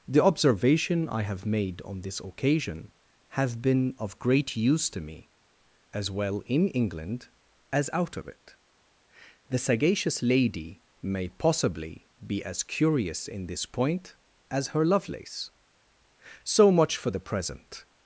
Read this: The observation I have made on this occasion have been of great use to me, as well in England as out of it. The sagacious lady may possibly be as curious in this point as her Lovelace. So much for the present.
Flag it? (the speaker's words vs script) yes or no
no